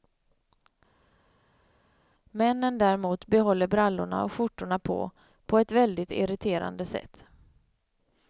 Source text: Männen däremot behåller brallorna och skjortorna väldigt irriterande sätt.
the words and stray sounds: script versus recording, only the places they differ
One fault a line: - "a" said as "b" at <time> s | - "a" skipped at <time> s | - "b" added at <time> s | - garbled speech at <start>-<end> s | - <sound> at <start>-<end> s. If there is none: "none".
- "på på ett" added at 4.8 s